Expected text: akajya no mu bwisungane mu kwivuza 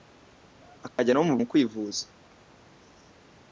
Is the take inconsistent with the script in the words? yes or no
yes